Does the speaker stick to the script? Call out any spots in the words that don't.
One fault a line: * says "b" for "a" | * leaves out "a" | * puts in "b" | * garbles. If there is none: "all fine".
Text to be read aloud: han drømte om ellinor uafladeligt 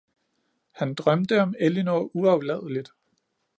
all fine